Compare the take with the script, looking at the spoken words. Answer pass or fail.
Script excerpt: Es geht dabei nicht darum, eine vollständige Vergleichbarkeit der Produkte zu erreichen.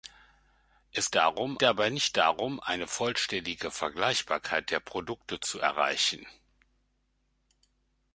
fail